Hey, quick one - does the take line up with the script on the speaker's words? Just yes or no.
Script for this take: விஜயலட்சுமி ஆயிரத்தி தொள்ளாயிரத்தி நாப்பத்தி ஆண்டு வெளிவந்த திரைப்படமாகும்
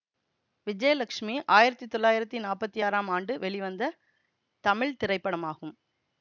no